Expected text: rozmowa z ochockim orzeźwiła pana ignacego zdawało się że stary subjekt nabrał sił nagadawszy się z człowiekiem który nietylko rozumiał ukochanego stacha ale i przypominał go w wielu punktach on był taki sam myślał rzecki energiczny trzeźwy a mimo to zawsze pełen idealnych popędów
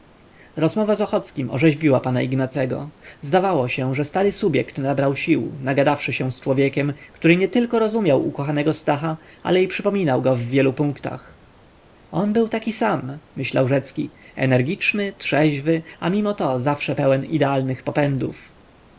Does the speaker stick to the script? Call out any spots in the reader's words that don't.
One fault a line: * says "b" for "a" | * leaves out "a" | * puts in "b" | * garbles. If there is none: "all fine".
all fine